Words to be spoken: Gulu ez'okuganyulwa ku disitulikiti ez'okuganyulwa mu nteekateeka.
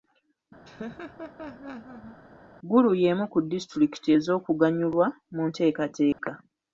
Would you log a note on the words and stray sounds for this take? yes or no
yes